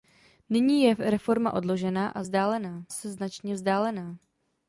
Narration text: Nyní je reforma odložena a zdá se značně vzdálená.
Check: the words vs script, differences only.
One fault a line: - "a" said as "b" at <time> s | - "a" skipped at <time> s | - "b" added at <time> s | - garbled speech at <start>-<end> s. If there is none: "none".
- "zdá" said as "vzdálená" at 2.2 s